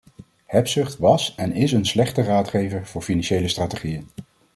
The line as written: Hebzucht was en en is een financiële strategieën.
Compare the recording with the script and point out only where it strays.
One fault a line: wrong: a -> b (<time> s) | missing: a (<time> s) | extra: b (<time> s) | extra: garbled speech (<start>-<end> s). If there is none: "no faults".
missing: en (1.5 s)
extra: slechte raadgever voor (1.8 s)